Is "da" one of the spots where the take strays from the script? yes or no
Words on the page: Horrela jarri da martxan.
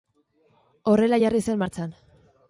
yes